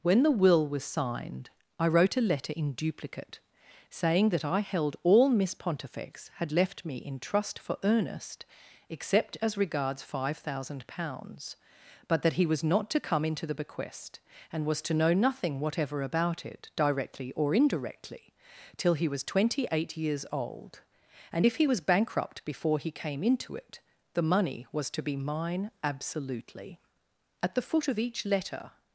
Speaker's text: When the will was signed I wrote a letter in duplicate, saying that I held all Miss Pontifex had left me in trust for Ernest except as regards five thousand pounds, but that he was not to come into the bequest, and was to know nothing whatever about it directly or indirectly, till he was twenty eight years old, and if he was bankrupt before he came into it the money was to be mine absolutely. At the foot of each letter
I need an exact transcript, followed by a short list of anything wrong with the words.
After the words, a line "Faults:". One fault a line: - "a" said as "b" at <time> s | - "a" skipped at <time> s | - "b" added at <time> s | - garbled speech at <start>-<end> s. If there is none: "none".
When the will was signed I wrote a letter in duplicate, saying that I held all Miss Pontifex had left me in trust for Ernest except as regards five thousand pounds, but that he was not to come into the bequest, and was to know nothing whatever about it directly or indirectly, till he was twenty eight years old, and if he was bankrupt before he came into it the money was to be mine absolutely. At the foot of each letter
Faults:
none